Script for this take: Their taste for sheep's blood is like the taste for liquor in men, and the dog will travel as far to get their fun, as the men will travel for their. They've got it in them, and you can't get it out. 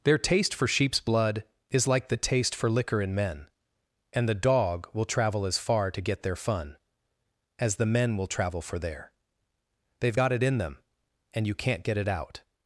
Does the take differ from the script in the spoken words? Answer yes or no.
no